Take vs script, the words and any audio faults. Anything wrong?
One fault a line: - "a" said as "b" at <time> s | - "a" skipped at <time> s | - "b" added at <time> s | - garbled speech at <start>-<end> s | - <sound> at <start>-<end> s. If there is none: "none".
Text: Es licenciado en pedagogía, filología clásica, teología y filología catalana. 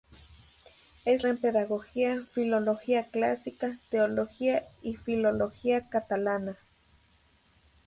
- "licenciado" skipped at 1.2 s